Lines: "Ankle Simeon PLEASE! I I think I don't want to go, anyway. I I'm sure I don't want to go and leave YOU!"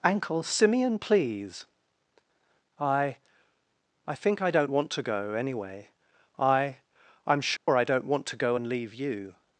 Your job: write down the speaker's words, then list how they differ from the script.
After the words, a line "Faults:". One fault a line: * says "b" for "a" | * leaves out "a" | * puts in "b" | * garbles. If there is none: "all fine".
"Ankle Simeon PLEASE! I I think I don't want to go, anyway. I I'm sure I don't want to go and leave YOU!"
Faults:
all fine